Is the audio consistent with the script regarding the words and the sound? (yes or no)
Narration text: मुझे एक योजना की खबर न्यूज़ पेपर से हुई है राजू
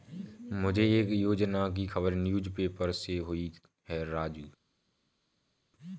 yes